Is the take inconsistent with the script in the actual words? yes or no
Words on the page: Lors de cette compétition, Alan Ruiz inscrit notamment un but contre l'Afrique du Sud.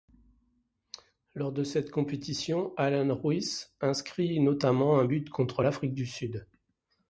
no